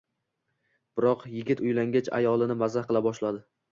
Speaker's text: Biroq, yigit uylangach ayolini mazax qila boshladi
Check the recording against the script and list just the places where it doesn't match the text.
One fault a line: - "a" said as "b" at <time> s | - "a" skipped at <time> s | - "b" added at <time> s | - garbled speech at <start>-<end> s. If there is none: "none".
none